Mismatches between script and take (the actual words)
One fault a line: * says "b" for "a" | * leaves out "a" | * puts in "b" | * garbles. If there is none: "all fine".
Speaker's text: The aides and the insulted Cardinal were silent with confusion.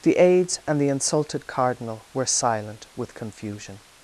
all fine